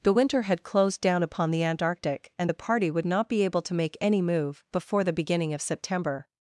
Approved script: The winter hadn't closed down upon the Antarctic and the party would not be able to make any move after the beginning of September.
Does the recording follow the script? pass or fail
fail